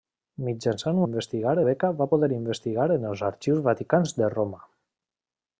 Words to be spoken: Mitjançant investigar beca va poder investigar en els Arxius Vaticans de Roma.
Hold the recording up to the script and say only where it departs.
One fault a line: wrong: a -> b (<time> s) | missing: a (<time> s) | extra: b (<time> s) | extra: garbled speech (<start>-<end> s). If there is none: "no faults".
no faults